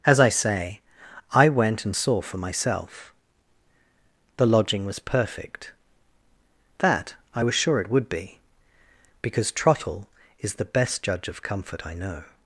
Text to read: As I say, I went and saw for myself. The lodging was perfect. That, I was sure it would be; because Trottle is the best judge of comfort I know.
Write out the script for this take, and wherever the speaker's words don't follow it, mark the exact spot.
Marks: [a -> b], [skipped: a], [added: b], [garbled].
As I say, I went and saw for myself. The lodging was perfect. That, I was sure it would be; because Trottle is the best judge of comfort I know.